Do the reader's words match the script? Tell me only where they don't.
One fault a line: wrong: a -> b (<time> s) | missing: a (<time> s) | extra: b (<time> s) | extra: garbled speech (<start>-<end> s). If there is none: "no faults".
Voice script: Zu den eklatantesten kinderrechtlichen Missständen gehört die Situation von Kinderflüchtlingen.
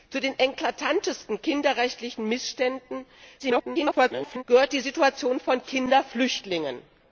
extra: garbled speech (3.4-4.4 s)